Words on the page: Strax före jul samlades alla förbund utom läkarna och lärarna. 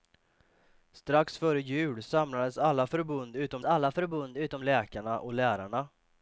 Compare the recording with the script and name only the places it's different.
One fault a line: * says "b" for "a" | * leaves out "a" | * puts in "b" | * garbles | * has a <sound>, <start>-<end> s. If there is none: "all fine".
* puts in "alla förbund utom"